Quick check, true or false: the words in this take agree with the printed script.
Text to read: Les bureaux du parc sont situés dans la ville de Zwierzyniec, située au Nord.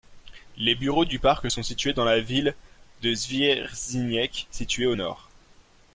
true